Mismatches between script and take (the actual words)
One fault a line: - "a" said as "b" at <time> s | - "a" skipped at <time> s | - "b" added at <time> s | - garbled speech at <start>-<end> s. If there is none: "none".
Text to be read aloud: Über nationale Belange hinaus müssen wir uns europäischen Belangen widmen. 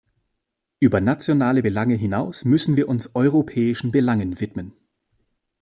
none